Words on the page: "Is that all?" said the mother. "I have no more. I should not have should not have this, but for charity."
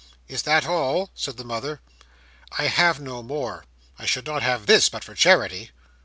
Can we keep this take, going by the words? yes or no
no